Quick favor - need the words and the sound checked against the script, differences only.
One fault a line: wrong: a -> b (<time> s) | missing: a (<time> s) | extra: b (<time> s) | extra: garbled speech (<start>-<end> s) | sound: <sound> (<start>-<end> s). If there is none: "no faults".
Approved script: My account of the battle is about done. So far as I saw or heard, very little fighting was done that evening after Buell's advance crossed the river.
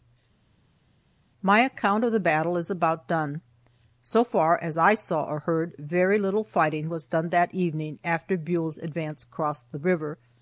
no faults